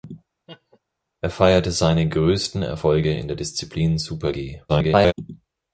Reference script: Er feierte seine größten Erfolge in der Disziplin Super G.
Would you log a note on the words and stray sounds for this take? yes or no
yes